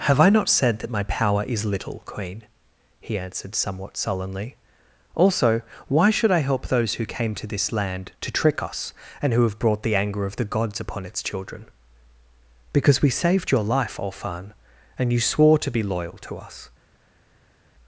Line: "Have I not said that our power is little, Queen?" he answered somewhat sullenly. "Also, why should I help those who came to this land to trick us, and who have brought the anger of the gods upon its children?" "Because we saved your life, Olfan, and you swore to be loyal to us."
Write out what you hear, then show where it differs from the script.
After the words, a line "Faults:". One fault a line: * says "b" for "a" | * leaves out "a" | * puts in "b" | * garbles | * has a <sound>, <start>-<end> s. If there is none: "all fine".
"Have I not said that my power is little, Queen?" he answered somewhat sullenly. "Also, why should I help those who came to this land to trick us, and who have brought the anger of the gods upon its children?" "Because we saved your life, Olfan, and you swore to be loyal to us."
Faults:
* says "my" for "our"